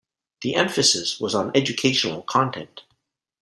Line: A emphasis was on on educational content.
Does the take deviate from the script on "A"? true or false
true